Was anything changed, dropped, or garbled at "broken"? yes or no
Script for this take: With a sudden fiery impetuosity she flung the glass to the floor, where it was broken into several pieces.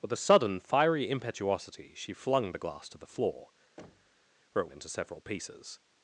yes